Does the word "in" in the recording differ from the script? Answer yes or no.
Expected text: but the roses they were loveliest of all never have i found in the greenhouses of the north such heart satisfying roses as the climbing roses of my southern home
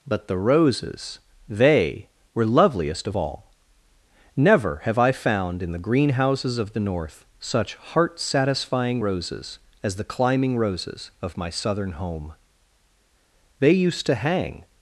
no